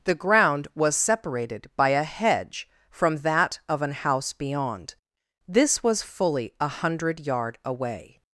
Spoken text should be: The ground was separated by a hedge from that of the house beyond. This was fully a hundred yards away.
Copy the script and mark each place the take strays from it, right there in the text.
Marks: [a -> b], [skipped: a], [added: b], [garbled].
The ground was separated by a hedge from that of [the -> an] house beyond. This was fully a hundred [yards -> yard] away.